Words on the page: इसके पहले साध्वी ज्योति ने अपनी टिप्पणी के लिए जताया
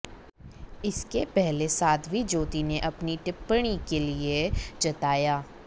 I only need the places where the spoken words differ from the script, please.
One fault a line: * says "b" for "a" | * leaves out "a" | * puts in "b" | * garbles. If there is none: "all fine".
all fine